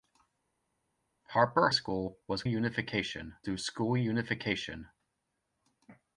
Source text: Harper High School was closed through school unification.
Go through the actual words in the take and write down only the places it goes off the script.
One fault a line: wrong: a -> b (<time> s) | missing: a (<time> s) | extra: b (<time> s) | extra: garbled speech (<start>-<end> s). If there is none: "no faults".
missing: High (1.7 s)
wrong: closed -> unification (2.4 s)